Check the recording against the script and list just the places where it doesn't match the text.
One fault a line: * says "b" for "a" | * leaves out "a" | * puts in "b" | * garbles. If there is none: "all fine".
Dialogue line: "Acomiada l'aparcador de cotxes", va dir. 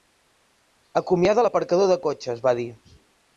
all fine